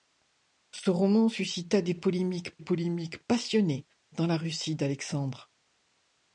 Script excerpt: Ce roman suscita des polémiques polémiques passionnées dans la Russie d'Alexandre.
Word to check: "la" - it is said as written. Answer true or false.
true